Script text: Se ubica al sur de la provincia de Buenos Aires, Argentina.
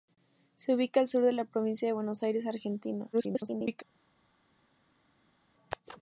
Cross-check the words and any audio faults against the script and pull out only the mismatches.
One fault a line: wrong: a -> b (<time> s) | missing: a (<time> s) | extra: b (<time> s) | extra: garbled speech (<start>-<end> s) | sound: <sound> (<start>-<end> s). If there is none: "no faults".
extra: garbled speech (3.1-3.8 s)